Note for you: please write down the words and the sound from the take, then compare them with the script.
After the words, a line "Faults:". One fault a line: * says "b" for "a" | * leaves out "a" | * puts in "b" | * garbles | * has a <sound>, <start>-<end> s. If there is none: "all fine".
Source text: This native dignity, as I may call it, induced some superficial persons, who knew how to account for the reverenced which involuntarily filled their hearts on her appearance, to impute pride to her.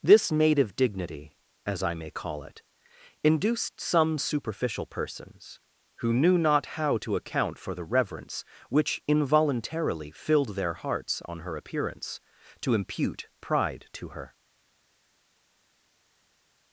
This native dignity, as I may call it, induced some superficial persons, who knew not how to account for the reverence which involuntarily filled their hearts on her appearance, to impute pride to her.
Faults:
* puts in "not"
* says "reverence" for "reverenced"